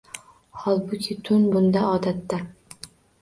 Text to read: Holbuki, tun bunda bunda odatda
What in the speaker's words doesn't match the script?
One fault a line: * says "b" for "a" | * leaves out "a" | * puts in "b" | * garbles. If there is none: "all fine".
* leaves out "bunda"